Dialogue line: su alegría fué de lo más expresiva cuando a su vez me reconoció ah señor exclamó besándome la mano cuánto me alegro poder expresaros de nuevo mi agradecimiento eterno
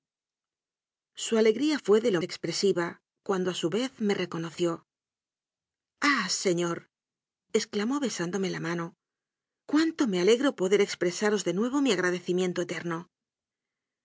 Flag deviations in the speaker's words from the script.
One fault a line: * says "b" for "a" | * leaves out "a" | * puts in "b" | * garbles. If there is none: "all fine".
* leaves out "más"